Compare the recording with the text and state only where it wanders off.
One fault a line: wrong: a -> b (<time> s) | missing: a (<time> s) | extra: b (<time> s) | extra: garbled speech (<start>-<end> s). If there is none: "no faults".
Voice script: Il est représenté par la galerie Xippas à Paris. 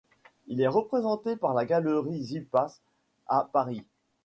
no faults